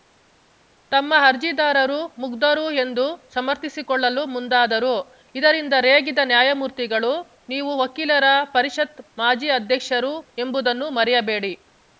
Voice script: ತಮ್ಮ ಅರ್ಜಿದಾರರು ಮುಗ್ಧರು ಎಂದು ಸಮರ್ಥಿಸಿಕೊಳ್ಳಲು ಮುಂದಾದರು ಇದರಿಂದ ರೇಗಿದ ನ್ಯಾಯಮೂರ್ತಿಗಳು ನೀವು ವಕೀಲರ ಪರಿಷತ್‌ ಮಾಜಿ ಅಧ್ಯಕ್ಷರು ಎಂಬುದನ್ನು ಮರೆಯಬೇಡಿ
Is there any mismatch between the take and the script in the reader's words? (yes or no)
no